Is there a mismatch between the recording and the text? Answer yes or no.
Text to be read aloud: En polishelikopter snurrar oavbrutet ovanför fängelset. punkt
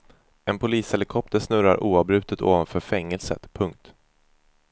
no